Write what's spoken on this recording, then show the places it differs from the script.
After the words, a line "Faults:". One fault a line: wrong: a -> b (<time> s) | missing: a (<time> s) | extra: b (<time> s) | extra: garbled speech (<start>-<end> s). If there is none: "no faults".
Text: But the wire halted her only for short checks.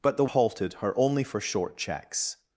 But the halted her only for short checks.
Faults:
missing: wire (0.2 s)